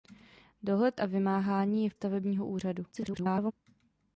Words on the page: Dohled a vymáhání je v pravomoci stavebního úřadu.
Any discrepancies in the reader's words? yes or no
yes